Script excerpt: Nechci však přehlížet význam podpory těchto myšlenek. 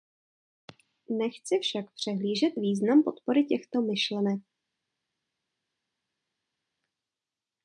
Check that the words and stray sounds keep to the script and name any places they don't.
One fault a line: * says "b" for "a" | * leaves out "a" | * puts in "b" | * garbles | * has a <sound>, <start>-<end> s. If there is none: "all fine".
all fine